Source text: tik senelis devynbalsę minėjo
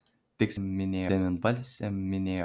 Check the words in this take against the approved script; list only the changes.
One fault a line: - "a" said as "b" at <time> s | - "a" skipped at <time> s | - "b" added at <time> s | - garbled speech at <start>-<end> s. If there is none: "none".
- "senelis" said as "minėjo" at 0.6 s